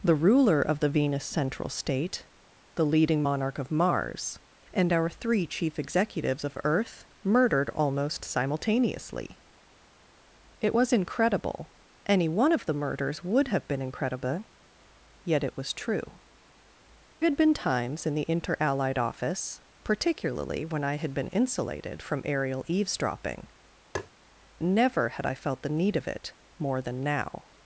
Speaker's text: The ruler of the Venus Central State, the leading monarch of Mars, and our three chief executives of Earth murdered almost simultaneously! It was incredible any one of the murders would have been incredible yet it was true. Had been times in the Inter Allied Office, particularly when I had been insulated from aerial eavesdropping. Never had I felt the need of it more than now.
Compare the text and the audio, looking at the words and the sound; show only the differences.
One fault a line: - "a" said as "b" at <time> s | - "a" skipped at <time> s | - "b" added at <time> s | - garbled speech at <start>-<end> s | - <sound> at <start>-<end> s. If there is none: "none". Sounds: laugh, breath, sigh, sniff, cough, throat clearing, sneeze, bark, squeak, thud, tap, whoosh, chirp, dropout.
- tap at 23.9-24.1 s